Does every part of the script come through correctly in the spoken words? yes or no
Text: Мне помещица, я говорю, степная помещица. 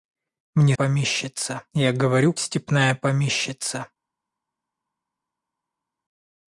yes